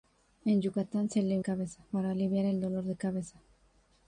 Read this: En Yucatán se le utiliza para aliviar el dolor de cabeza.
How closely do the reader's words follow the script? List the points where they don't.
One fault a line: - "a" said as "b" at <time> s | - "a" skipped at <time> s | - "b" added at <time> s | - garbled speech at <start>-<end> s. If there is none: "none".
- "utiliza" said as "cabeza" at 1.4 s